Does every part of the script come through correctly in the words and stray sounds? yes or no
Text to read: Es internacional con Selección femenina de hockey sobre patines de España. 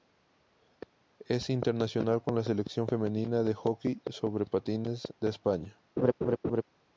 no